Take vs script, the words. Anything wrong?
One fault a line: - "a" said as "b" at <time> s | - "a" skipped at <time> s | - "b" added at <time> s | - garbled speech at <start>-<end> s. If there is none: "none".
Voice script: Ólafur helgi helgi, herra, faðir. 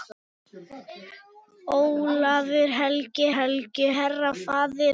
none